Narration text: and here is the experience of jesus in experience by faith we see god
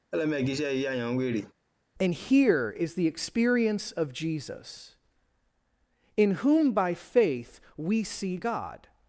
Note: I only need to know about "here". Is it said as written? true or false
true